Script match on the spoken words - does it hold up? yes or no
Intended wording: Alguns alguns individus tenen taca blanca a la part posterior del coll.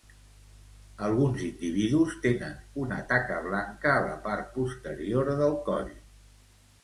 no